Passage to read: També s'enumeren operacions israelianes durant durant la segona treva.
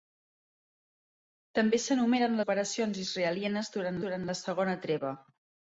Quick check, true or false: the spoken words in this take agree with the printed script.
true